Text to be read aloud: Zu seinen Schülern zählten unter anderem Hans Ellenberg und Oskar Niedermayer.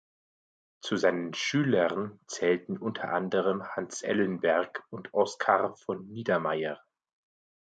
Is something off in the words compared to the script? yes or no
yes